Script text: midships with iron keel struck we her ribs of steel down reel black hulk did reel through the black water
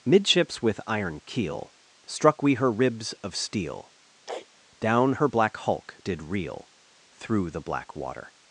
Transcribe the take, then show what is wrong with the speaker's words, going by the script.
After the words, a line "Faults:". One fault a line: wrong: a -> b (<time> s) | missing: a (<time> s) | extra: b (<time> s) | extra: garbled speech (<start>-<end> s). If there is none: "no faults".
midships with iron keel struck we her ribs of steel down her black hulk did reel through the black water
Faults:
wrong: reel -> her (5.1 s)